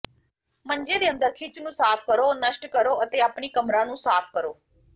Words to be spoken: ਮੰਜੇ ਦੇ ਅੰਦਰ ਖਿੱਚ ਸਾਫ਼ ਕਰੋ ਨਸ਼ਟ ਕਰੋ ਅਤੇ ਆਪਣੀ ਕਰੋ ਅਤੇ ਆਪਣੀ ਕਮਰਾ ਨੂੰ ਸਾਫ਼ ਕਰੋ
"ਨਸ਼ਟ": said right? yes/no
yes